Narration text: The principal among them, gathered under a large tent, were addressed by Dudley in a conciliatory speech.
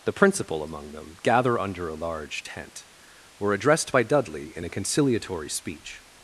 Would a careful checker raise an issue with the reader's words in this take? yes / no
yes